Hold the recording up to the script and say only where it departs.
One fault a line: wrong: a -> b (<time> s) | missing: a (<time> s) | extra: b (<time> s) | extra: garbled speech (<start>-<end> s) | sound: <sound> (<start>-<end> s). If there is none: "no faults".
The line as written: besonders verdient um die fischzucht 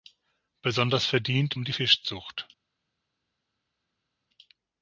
no faults